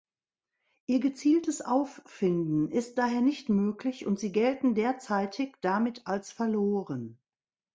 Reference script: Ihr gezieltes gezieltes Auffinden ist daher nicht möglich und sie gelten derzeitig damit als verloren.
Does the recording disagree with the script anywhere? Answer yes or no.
yes